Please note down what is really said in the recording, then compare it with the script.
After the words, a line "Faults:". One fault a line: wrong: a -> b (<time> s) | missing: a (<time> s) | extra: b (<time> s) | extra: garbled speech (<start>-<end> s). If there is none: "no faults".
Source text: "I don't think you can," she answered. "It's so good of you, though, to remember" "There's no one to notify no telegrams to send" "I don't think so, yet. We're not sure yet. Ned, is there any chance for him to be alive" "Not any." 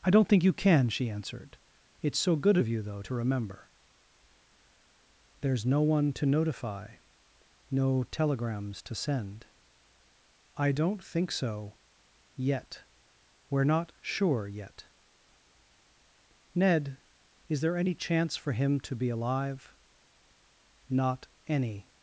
"I don't think you can," she answered. "It's so good of you, though, to remember" "There's no one to notify no telegrams to send" "I don't think so, yet. We're not sure yet. Ned, is there any chance for him to be alive" "Not any."
Faults:
no faults